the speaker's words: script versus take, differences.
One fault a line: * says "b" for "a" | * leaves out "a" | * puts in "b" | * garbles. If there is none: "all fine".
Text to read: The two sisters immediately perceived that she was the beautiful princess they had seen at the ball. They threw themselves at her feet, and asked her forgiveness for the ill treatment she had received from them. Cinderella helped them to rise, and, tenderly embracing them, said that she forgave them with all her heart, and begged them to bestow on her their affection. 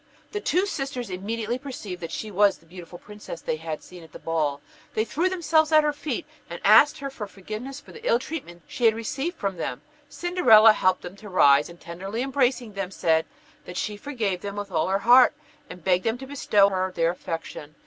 * leaves out "on"